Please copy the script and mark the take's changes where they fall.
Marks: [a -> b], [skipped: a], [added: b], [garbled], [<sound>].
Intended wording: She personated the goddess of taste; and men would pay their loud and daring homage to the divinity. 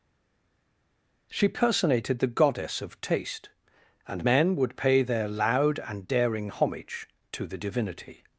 She personated the goddess of taste; and men would pay their loud and daring homage to the divinity.